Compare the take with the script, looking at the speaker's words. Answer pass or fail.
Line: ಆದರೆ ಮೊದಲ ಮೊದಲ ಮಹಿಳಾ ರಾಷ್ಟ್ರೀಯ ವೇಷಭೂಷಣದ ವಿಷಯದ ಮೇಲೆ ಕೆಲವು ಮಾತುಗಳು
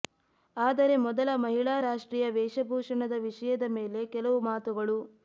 fail